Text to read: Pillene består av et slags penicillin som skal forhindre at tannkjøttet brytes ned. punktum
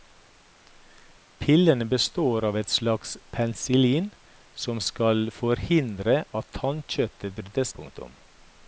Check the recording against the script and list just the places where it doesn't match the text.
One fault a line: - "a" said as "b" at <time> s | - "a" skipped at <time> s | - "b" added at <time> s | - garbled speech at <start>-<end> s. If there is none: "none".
- "ned" skipped at 7.8 s